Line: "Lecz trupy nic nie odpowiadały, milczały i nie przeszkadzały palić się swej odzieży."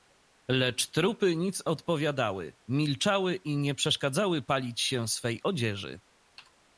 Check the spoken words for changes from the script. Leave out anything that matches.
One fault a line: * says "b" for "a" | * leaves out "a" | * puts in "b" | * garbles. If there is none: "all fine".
* leaves out "nie"